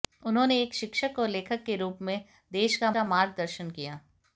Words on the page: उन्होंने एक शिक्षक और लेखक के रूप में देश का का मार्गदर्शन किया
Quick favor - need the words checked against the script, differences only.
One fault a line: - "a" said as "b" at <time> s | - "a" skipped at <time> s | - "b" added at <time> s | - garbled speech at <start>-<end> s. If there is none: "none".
none